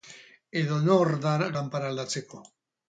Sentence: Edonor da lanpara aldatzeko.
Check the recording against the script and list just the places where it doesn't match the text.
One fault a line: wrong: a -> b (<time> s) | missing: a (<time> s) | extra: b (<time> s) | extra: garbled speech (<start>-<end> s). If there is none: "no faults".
no faults